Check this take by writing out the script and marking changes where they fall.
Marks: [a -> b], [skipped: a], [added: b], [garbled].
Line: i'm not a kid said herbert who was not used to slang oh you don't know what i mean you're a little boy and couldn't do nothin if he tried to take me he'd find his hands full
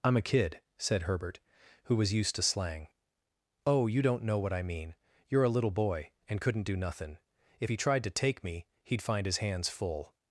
i'm [skipped: not] a kid said herbert who was [skipped: not] used to slang oh you don't know what i mean you're a little boy and couldn't do nothin if he tried to take me he'd find his hands full